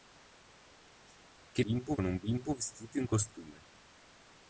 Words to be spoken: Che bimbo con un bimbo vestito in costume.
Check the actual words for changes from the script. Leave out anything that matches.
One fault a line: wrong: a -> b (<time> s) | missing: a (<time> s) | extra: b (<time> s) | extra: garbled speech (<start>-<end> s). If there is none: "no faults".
no faults